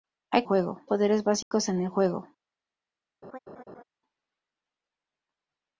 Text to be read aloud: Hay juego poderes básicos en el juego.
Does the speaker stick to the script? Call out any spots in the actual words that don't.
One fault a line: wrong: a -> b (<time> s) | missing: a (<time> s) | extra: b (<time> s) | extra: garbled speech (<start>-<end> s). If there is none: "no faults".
no faults